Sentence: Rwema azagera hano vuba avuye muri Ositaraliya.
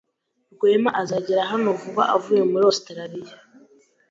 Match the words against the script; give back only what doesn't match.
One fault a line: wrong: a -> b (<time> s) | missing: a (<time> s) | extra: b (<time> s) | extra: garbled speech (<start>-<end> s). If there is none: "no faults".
no faults